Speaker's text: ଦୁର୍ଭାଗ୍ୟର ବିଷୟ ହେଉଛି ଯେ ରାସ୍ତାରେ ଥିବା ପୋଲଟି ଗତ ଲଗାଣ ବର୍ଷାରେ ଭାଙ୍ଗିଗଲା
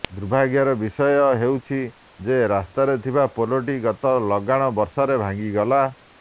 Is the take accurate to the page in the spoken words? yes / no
yes